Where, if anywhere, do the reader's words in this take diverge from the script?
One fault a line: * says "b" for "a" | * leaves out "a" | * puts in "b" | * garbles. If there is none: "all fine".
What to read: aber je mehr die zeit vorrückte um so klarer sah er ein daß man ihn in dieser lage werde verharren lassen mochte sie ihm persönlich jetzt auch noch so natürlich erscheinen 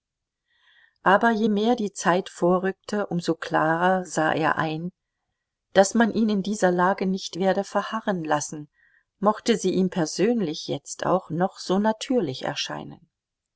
* puts in "nicht"